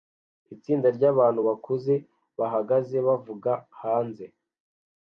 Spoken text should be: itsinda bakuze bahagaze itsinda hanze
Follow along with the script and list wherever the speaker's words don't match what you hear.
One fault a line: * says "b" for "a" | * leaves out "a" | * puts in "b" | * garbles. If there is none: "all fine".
* puts in "ryabantu"
* says "bavuga" for "itsinda"